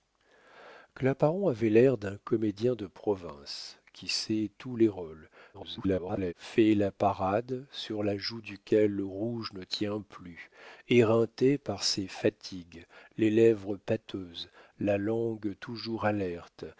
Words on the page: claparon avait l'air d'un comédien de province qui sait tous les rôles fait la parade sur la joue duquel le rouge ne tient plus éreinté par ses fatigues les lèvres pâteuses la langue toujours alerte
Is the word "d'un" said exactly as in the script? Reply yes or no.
yes